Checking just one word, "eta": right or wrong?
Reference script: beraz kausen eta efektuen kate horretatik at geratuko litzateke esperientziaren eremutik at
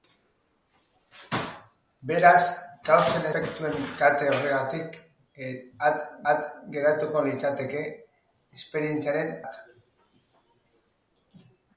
wrong